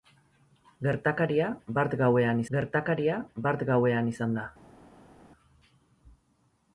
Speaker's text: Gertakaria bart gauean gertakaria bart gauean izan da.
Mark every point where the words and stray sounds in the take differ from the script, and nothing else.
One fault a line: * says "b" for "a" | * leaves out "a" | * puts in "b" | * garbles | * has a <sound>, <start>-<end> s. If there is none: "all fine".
all fine